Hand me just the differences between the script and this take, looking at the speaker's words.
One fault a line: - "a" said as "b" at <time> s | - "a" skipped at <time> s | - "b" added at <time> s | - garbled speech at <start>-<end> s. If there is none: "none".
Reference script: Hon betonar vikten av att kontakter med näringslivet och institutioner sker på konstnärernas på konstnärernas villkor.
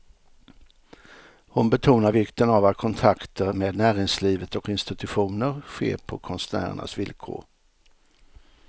- "på konstnärernas" skipped at 7.0 s